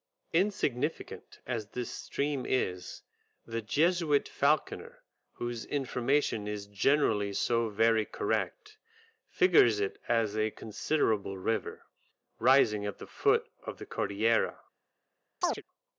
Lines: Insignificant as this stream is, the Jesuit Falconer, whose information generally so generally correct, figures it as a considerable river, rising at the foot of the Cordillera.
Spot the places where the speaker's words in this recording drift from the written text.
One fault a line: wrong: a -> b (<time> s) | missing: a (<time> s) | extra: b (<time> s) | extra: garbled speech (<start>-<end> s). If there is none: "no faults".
extra: is (6.5 s)
wrong: generally -> very (7.7 s)